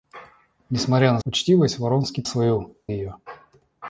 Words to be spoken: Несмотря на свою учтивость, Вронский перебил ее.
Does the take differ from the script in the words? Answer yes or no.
yes